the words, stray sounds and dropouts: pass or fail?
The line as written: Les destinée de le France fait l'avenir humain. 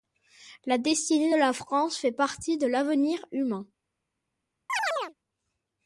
fail